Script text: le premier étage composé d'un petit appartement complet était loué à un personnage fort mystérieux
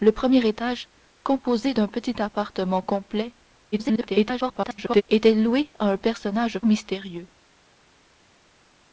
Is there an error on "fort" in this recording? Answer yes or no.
yes